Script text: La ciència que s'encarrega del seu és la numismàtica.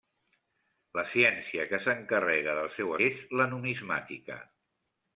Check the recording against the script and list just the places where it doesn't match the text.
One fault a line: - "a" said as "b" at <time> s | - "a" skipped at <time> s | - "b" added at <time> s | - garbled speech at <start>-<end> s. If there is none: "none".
none